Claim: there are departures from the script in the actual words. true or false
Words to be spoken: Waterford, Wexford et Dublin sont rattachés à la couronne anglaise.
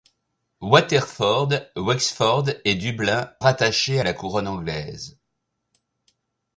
true